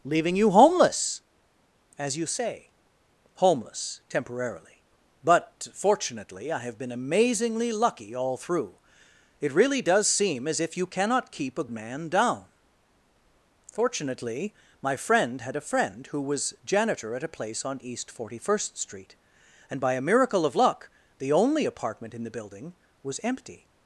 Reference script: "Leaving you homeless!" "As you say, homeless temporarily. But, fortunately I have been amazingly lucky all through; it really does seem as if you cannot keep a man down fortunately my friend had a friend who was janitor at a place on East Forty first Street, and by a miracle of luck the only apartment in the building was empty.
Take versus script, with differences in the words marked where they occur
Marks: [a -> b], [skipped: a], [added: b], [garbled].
"Leaving you homeless!" "As you say, homeless temporarily. But, fortunately I have been amazingly lucky all through; it really does seem as if you cannot keep a man down fortunately my friend had a friend who was janitor at a place on East Forty first Street, and by a miracle of luck the only apartment in the building was empty.